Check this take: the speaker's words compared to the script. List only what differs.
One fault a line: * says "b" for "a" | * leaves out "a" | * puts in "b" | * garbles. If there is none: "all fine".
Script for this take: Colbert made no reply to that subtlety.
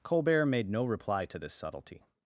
* says "this" for "that"